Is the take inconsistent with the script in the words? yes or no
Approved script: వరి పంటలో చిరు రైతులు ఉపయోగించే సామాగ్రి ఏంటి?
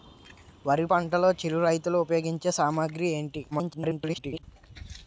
yes